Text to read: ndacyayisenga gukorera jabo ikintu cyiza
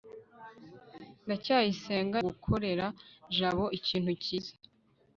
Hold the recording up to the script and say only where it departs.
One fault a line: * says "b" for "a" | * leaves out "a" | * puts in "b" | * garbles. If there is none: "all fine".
all fine